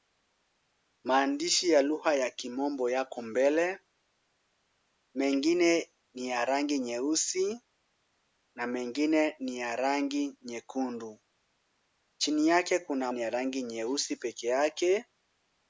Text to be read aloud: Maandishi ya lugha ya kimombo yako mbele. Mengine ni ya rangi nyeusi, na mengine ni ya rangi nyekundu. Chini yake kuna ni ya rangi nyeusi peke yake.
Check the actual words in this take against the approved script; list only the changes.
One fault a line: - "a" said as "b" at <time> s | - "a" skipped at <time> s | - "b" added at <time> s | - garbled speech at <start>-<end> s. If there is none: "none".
none